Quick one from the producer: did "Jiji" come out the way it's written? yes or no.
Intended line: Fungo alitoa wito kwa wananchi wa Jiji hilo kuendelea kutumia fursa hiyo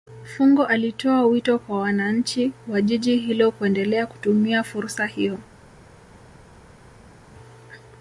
yes